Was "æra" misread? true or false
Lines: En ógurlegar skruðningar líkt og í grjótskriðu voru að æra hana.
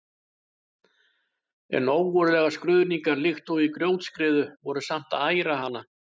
false